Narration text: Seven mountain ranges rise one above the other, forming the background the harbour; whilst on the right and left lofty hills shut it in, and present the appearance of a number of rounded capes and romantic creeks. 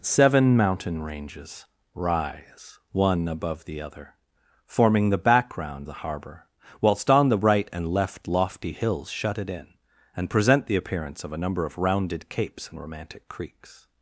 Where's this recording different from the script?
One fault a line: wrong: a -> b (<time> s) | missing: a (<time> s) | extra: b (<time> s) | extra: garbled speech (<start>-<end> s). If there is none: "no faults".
no faults